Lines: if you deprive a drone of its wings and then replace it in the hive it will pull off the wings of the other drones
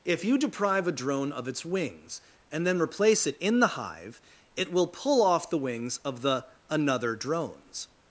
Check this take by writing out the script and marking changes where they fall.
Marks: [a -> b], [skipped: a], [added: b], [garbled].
if you deprive a drone of its wings and then replace it in the hive it will pull off the wings of the [other -> another] drones